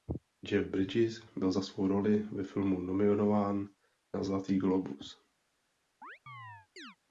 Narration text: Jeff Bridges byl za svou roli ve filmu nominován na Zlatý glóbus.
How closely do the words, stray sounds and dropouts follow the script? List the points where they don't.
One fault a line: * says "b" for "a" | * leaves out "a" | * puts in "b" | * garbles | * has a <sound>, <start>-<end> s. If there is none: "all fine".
* has a chirp, 6.0-7.0 s